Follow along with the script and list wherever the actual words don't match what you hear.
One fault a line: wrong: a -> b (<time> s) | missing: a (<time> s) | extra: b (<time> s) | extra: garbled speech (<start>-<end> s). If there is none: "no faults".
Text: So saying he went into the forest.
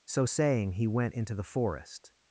no faults